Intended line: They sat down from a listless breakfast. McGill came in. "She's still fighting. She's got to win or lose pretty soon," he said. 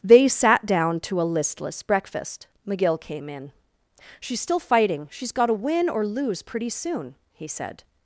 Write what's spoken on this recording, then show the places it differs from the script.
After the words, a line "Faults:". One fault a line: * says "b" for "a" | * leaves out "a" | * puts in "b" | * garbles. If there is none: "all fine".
They sat down to a listless breakfast. McGill came in. "She's still fighting. She's got to win or lose pretty soon," he said.
Faults:
* says "to" for "from"